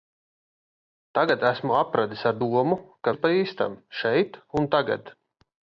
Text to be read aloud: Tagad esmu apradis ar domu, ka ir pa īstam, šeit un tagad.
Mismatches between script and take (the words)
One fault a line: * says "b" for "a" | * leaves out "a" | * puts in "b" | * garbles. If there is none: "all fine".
all fine